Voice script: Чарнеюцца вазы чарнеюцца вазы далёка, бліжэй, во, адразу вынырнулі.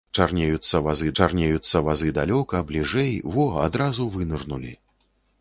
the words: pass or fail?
pass